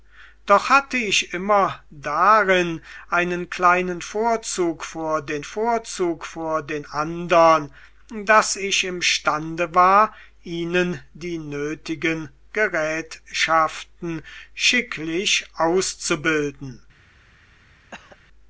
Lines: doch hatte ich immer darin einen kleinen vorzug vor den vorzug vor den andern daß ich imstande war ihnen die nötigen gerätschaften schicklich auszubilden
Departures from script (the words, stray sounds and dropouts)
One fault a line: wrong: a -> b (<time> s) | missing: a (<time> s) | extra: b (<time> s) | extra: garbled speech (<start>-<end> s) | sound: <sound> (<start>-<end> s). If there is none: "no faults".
sound: cough (17.9-18.2 s)